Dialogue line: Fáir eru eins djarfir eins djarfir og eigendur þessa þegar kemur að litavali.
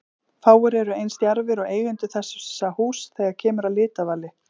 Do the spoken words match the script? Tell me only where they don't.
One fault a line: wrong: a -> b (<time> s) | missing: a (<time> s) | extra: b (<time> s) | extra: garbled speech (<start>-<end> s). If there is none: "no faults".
missing: eins djarfir (1.6 s)
extra: húss (2.8 s)